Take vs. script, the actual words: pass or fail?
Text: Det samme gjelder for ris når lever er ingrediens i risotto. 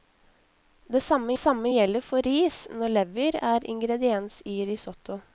fail